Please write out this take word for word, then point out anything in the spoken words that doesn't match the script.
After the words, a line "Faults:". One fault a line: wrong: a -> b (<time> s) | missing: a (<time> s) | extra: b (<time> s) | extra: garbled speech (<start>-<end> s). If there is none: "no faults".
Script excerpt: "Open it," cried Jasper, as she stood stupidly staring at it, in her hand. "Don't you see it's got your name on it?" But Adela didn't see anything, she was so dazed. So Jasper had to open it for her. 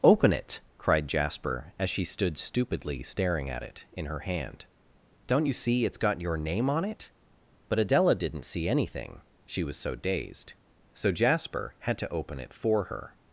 "Open it," cried Jasper, as she stood stupidly staring at it, in her hand. "Don't you see it's got your name on it?" But Adela didn't see anything, she was so dazed. So Jasper had to open it for her.
Faults:
no faults